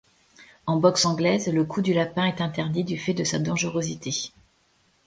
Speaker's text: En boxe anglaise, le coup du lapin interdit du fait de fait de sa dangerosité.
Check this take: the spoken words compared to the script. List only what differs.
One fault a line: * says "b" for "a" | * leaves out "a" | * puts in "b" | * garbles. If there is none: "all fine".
* puts in "est"
* leaves out "fait de"